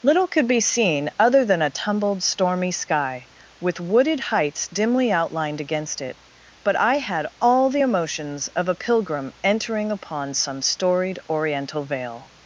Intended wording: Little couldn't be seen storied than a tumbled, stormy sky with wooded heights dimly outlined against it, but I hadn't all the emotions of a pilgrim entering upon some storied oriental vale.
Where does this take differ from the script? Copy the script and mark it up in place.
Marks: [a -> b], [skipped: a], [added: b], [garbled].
Little [couldn't -> could] be seen [storied -> other] than a tumbled, stormy sky with wooded heights dimly outlined against it, but I [hadn't -> had] all the emotions of a pilgrim entering upon some storied oriental vale.